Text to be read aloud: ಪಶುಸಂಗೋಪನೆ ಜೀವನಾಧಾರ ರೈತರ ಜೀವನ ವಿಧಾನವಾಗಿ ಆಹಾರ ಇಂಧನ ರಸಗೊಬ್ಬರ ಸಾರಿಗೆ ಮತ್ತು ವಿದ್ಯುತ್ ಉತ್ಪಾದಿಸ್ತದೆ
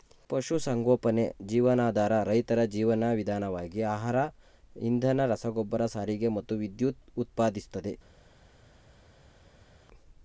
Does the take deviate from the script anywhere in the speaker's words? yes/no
no